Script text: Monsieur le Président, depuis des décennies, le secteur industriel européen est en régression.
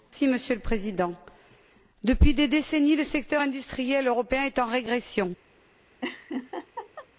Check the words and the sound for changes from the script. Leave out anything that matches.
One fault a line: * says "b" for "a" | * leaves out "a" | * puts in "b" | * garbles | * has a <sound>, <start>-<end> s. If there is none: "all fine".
* has a laugh, 6.0-7.1 s